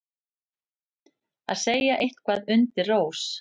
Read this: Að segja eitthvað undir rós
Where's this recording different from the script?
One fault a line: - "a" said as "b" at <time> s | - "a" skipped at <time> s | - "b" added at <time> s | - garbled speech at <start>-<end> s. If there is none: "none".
none